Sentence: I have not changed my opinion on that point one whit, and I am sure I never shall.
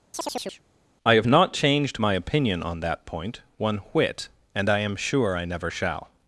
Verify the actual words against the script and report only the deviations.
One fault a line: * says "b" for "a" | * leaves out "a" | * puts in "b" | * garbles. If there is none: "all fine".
all fine